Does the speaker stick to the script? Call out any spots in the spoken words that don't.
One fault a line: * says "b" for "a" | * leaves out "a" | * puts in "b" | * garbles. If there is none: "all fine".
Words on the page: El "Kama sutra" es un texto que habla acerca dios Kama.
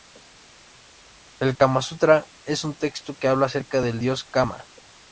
* puts in "del"